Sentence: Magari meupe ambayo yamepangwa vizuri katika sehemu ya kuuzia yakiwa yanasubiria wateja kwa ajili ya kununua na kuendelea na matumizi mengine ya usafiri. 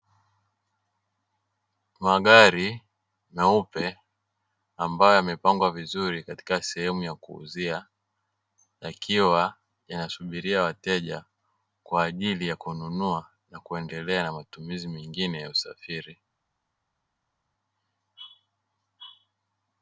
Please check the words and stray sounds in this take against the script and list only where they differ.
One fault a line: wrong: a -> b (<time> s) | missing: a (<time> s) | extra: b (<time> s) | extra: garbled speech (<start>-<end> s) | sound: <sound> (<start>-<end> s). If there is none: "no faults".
no faults